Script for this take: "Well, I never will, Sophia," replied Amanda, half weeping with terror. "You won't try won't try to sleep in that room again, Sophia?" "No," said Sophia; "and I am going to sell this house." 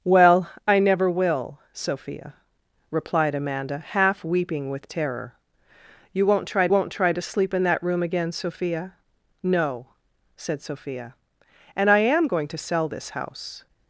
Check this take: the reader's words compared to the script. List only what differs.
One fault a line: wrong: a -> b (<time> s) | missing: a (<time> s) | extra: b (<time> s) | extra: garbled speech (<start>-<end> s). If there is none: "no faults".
no faults